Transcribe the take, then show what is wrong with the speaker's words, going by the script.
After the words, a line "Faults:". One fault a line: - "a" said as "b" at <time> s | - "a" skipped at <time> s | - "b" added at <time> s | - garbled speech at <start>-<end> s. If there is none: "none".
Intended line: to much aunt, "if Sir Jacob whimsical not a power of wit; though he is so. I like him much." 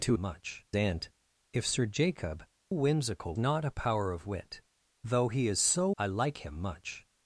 to much aunt, "if Sir Jacob whimsical not a power of wit; though he is so. I like him much."
Faults:
none